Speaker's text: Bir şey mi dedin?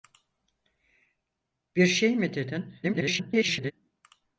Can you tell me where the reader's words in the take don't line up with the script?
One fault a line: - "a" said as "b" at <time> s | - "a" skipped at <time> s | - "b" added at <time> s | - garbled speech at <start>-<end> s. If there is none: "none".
- garbled speech at 2.8-3.7 s